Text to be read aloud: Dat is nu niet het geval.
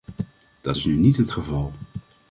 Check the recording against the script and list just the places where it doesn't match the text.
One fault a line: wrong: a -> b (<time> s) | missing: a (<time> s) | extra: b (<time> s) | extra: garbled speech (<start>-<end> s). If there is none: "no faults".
no faults